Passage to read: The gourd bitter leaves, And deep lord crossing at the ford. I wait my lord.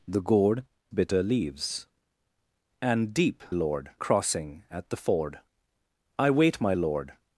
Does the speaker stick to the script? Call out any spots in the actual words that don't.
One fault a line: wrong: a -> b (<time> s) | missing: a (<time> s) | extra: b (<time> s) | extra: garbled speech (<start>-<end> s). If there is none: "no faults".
no faults